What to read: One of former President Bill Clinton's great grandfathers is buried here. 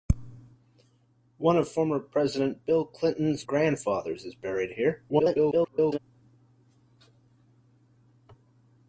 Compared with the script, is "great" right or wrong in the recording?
wrong